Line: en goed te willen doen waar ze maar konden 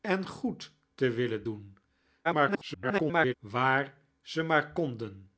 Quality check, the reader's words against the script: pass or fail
fail